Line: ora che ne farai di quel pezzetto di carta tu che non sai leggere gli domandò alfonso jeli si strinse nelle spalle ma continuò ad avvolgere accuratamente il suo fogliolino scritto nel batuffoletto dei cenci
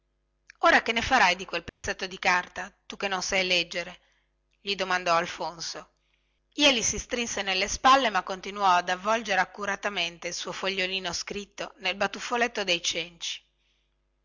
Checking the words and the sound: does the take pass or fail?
fail